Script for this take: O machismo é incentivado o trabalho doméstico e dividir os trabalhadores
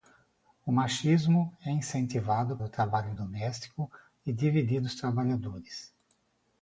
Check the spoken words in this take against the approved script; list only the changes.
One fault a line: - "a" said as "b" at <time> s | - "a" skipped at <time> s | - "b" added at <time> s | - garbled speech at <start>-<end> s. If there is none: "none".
none